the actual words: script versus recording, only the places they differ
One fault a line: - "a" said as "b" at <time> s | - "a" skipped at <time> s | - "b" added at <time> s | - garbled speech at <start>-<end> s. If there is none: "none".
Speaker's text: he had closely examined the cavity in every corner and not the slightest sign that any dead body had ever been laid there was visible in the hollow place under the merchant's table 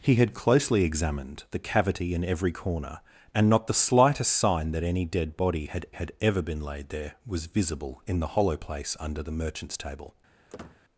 - "had" added at 5.9 s